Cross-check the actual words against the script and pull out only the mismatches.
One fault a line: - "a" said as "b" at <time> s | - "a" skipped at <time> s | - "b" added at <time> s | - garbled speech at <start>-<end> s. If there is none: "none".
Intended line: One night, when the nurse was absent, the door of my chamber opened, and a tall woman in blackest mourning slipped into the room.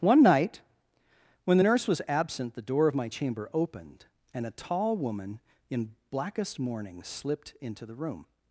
none